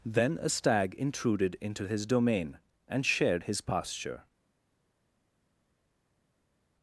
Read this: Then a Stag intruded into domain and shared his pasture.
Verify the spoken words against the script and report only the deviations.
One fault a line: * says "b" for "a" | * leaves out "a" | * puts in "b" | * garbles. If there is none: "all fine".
* puts in "his"